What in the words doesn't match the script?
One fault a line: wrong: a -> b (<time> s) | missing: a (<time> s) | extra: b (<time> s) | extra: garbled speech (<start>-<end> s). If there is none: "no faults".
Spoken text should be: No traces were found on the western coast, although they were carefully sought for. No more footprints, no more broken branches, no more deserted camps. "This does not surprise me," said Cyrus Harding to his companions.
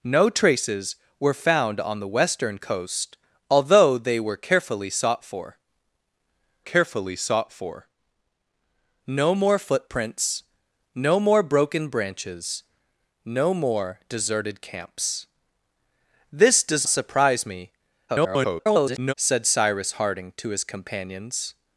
extra: carefully sought for (6.6 s)
missing: not (16.9 s)
extra: garbled speech (18.1-19.1 s)